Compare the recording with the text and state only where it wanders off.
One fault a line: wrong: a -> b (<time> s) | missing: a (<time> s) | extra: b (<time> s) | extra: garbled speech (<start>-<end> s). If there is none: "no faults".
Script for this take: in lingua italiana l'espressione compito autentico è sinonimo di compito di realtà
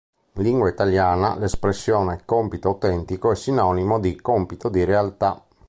no faults